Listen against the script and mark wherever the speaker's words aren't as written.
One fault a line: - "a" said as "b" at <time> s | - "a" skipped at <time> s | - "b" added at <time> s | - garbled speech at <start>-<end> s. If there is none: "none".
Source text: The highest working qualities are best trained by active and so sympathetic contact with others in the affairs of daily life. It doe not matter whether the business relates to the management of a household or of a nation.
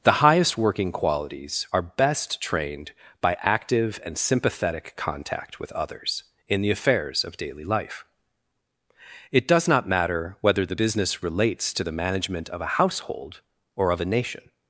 - "so" skipped at 4.2 s
- "doe" said as "does" at 9.5 s